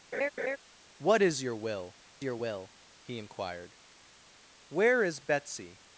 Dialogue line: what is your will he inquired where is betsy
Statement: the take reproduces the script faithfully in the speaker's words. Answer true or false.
false